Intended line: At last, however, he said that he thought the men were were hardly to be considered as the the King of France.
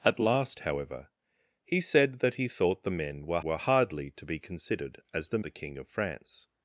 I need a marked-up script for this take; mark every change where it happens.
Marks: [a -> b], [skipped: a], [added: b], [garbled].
At last, however, he said that he thought the men were were hardly to be considered as the the King of France.